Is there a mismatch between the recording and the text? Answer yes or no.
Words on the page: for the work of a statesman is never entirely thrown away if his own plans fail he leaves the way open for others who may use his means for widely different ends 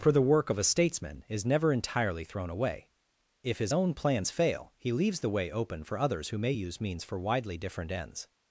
yes